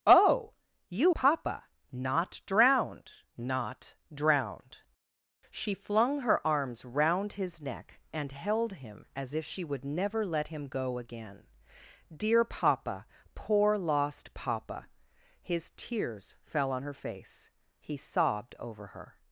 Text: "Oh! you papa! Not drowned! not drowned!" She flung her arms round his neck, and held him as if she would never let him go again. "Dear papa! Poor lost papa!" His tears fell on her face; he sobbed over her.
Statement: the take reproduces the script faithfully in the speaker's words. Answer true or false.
true